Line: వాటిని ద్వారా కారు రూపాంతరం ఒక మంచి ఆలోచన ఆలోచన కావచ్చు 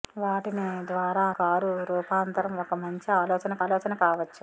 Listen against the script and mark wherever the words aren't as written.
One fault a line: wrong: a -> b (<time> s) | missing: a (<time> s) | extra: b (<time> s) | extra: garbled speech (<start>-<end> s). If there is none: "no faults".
no faults